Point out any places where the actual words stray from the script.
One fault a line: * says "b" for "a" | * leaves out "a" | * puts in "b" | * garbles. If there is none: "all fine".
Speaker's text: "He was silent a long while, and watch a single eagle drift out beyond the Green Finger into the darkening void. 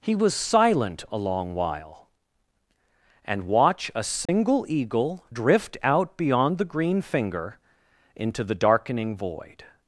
all fine